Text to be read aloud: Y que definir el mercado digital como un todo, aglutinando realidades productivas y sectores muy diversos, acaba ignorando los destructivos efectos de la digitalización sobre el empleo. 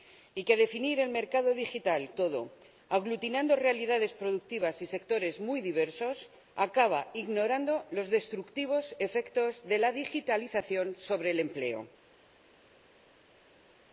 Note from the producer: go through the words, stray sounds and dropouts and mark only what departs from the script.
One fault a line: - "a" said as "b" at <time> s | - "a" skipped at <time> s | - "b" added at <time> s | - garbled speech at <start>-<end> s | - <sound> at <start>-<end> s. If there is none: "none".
- "como un" skipped at 2.1 s